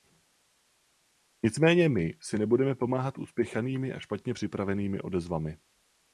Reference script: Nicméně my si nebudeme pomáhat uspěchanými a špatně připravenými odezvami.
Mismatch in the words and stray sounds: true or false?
false